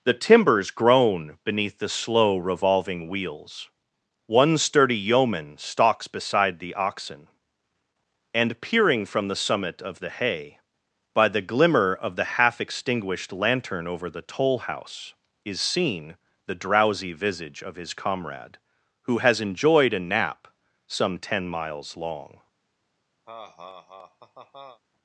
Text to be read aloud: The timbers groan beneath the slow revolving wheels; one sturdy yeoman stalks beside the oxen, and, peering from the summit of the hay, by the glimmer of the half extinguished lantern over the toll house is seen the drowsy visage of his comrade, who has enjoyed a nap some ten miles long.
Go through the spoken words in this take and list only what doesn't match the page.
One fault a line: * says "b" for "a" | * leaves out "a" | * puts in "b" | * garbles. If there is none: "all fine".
all fine